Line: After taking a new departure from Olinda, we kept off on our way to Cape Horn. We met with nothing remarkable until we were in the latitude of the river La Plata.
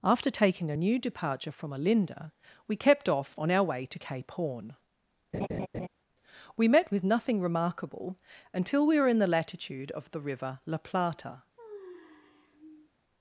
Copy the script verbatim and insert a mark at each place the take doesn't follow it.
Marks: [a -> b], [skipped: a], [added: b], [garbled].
After taking a new departure from Olinda, we kept off on our way to Cape Horn. We met with nothing remarkable until we were in the latitude of the river La Plata.